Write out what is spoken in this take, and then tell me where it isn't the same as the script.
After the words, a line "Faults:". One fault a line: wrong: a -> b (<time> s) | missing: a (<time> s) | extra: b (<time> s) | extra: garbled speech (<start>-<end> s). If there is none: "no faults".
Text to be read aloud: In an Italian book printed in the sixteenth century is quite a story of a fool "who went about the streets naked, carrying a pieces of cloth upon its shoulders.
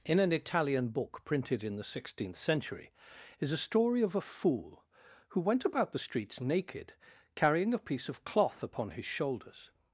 In an Italian book printed in the sixteenth century is a story of a fool "who went about the streets naked, carrying a piece of cloth upon his shoulders.
Faults:
missing: quite (3.5 s)
wrong: pieces -> piece (7.9 s)
wrong: its -> his (8.9 s)